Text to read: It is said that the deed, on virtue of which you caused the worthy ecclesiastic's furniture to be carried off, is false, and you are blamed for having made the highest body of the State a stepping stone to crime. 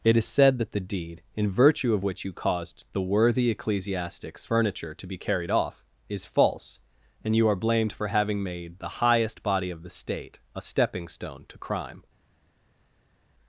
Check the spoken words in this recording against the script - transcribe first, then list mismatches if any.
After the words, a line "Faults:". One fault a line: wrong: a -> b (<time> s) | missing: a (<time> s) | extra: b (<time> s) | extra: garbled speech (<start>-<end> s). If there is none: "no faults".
It is said that the deed, in virtue of which you caused the worthy ecclesiastic's furniture to be carried off, is false, and you are blamed for having made the highest body of the State a stepping stone to crime.
Faults:
wrong: on -> in (1.3 s)